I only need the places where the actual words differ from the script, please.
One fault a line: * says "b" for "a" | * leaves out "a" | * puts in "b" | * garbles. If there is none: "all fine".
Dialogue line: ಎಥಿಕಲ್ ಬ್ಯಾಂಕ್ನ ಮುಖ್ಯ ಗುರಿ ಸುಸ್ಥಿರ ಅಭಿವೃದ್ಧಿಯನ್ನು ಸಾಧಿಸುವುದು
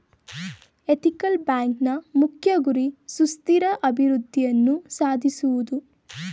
all fine